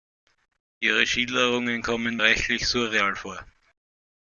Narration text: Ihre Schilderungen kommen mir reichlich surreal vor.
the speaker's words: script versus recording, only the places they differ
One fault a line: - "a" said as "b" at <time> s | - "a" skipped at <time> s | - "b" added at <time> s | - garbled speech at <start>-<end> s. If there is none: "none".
- "mir" skipped at 2.2 s